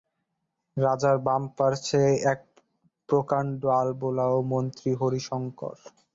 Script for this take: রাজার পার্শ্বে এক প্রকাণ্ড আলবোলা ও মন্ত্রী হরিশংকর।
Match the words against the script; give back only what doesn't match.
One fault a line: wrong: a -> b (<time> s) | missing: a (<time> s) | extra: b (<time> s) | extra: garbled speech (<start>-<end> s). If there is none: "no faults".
extra: বাম (1.2 s)